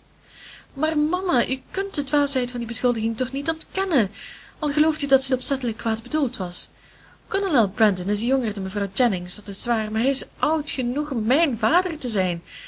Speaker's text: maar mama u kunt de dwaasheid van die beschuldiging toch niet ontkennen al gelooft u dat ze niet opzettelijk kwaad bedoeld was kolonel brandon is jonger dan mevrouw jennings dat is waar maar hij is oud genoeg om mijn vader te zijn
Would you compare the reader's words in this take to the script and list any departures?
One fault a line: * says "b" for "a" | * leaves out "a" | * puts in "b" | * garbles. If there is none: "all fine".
* leaves out "niet"